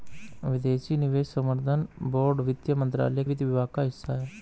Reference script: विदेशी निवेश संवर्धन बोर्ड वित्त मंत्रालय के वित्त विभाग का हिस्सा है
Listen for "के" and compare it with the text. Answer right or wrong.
wrong